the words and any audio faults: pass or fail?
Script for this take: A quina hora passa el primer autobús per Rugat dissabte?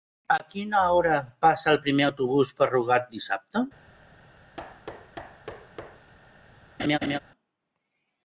fail